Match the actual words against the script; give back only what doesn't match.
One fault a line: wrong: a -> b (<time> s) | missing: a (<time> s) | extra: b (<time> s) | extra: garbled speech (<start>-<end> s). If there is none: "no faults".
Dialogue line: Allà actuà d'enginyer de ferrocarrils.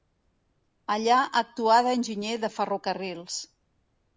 no faults